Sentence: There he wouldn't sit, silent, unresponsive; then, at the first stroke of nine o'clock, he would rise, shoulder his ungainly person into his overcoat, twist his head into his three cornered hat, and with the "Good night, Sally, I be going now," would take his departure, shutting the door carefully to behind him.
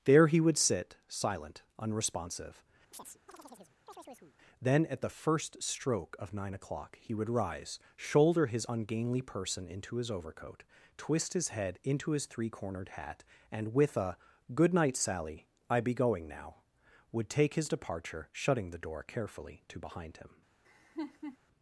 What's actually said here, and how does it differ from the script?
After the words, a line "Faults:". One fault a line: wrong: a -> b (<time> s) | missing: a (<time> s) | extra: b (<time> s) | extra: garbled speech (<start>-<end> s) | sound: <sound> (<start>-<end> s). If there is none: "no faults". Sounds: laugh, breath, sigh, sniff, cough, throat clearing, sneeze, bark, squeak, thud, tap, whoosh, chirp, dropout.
There he would sit, silent, unresponsive; then, at the first stroke of nine o'clock, he would rise, shoulder his ungainly person into his overcoat, twist his head into his three cornered hat, and with a "Good night, Sally, I be going now," would take his departure, shutting the door carefully to behind him.
Faults:
wrong: wouldn't -> would (0.4 s)
sound: chirp (2.9-4.4 s)
wrong: the -> a (14.0 s)
sound: laugh (20.6-21.4 s)